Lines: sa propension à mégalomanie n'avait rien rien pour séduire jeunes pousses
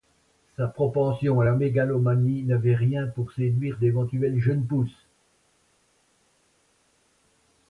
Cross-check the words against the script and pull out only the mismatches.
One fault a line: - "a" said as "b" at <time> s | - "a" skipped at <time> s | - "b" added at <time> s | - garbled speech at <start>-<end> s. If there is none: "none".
- "la" added at 1.4 s
- "rien" skipped at 3.1 s
- "d'éventuelles" added at 3.8 s